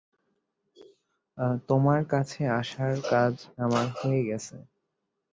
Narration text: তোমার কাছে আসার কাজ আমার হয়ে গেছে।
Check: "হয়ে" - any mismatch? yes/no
no